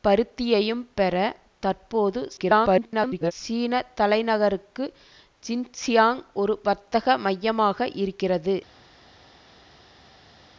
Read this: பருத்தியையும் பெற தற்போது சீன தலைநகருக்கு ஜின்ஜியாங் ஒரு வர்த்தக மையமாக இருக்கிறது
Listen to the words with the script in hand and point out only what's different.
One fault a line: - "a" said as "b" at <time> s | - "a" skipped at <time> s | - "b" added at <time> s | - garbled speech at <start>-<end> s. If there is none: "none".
- garbled speech at 2.4-3.3 s